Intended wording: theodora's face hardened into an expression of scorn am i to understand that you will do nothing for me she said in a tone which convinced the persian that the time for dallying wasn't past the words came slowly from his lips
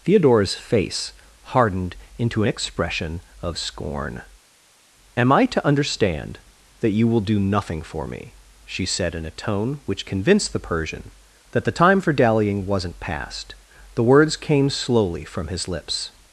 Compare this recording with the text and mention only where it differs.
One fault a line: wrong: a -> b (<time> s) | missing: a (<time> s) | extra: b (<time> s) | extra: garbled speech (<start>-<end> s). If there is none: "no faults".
no faults